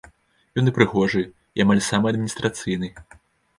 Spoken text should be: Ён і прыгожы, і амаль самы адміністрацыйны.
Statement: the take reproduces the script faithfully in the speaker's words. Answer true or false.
true